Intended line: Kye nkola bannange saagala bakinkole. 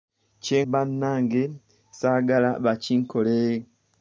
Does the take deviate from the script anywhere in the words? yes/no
yes